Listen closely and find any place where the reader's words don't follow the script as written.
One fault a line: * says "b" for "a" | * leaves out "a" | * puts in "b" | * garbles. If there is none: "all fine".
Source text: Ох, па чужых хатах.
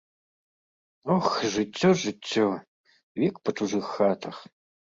* puts in "жыццё жыццё век"